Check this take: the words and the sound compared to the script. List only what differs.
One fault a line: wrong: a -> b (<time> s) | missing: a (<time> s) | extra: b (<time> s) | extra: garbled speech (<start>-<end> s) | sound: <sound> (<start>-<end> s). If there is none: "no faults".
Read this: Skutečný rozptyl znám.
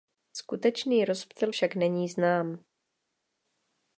extra: však není (1.5 s)